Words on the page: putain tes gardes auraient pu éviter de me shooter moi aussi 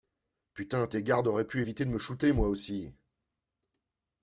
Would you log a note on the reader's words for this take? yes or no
no